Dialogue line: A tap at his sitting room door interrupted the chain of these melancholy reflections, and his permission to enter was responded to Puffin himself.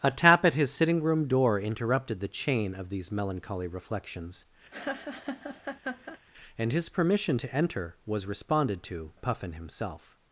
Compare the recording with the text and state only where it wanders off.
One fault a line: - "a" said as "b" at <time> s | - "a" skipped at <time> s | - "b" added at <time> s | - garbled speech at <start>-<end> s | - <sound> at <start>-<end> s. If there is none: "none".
- laugh at 4.7-6.2 s